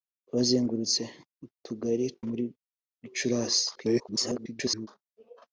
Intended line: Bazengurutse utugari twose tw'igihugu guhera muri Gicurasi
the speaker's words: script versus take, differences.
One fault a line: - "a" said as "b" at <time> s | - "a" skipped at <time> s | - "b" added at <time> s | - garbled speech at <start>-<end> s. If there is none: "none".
- "twose tw'igihugu guhera" skipped at 2.0 s
- garbled speech at 3.8-4.9 s